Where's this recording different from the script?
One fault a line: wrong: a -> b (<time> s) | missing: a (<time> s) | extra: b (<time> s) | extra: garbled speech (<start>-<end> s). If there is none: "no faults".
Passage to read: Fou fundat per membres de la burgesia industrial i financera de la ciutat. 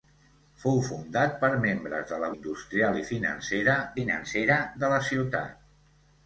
missing: burgesia (2.3 s)
extra: financera (4.0 s)